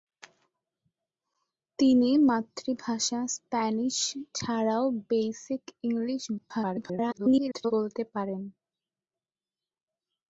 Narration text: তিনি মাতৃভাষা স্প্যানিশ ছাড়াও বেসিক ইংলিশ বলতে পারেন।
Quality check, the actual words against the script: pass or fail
fail